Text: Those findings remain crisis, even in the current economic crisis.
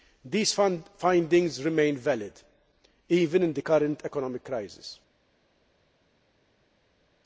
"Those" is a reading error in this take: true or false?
true